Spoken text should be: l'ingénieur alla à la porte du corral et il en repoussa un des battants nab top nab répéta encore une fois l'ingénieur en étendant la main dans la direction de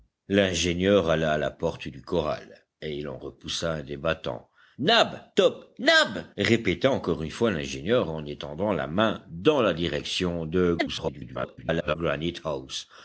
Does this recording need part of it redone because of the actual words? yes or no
yes